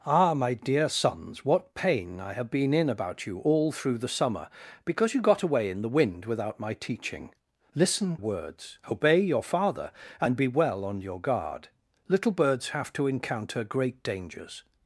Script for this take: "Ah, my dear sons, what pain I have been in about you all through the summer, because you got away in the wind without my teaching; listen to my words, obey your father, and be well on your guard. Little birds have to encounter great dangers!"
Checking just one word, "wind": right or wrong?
right